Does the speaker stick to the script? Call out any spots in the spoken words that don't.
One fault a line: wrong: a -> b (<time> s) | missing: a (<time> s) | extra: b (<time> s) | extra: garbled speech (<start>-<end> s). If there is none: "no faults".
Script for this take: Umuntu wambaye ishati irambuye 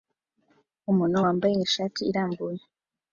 no faults